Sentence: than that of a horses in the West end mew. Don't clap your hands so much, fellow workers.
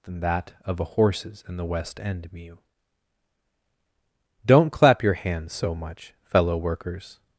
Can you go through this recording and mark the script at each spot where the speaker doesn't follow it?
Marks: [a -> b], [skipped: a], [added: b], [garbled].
than that of a horses in the West end mew. Don't clap your hands so much, fellow workers.